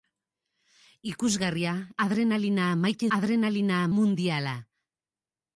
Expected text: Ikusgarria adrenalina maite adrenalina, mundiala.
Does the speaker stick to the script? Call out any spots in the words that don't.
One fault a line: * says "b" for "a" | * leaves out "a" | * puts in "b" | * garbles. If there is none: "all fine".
all fine